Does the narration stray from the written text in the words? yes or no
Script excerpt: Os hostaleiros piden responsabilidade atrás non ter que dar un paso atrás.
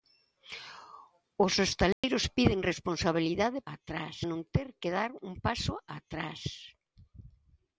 no